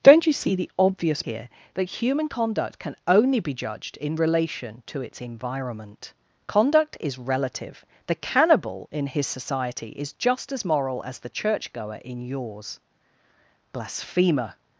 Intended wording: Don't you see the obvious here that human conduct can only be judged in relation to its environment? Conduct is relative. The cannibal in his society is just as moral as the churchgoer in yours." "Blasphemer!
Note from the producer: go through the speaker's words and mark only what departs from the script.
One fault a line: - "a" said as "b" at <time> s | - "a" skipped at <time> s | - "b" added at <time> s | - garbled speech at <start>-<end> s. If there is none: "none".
none